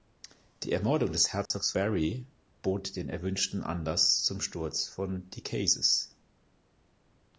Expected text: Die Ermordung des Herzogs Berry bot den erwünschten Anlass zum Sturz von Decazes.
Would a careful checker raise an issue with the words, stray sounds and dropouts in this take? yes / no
yes